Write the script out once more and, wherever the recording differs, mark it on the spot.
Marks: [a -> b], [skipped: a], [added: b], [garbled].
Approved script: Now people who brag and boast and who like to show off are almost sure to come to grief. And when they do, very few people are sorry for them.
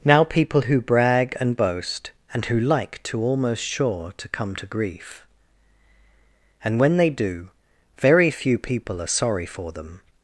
Now people who brag and boast and who like to [skipped: show off are] almost sure to come to grief. And when they do, very few people are sorry for them.